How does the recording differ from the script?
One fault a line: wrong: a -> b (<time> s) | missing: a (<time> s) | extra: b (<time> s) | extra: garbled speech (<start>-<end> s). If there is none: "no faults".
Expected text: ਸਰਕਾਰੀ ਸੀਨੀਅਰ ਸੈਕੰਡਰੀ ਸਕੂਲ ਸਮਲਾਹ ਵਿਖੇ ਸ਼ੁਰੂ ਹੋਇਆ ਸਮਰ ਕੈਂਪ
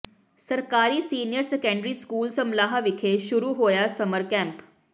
no faults